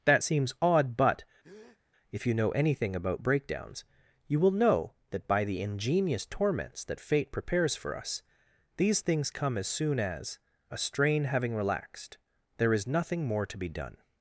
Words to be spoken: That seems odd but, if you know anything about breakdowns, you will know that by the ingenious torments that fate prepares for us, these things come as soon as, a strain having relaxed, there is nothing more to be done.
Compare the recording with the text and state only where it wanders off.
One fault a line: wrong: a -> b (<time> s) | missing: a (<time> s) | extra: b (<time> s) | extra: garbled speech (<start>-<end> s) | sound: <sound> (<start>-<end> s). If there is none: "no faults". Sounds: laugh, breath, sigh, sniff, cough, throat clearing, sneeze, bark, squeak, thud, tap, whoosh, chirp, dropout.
sound: breath (1.4-1.8 s)